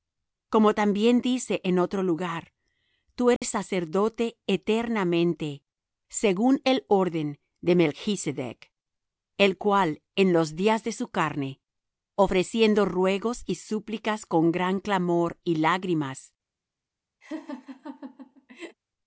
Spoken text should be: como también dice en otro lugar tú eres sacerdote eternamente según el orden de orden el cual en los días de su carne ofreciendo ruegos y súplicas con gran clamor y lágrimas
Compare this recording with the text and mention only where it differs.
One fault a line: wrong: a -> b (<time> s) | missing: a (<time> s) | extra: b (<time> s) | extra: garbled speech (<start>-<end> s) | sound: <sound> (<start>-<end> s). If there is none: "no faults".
sound: dropout (3.4-3.4 s)
wrong: orden -> melchsedec (7.8 s)
sound: laugh (17.2-18.8 s)